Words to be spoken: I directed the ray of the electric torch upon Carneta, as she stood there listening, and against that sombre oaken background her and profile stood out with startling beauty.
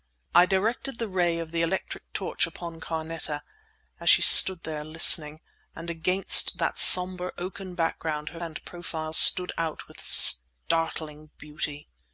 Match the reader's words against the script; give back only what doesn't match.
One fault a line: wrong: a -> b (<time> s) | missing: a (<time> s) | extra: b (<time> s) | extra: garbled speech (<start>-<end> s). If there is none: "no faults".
no faults